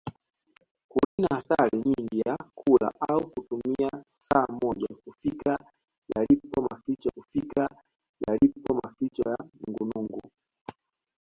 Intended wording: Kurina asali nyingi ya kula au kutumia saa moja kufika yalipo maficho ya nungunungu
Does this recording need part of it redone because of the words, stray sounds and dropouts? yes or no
yes